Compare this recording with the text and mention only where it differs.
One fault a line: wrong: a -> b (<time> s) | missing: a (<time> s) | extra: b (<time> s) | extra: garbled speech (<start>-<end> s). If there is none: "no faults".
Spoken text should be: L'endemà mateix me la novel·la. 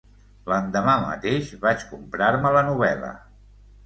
extra: vaig comprar (1.6 s)